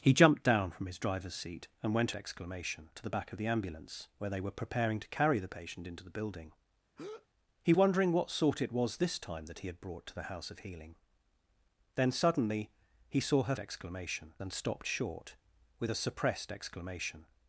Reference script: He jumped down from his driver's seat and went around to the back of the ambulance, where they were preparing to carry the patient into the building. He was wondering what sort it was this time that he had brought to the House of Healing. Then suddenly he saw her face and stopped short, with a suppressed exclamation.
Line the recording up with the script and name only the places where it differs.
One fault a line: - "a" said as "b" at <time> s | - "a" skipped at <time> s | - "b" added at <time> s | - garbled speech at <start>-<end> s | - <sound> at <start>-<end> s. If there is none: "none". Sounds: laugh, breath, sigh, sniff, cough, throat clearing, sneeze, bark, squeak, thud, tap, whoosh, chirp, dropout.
- "around" said as "exclamation" at 2.1 s
- breath at 7.0-7.3 s
- "was" skipped at 7.7 s
- "face" said as "exclamation" at 13.6 s